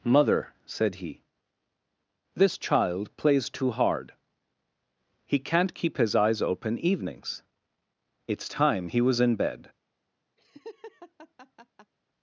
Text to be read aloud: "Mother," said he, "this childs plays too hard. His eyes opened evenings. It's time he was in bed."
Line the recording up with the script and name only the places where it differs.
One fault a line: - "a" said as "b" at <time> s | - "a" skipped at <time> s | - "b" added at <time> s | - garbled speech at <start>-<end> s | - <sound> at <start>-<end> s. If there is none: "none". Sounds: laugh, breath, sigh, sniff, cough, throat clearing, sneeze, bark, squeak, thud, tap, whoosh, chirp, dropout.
- "childs" said as "child" at 2.6 s
- "He can't keep" added at 5.3 s
- "opened" said as "open" at 6.4 s
- laugh at 10.4-11.9 s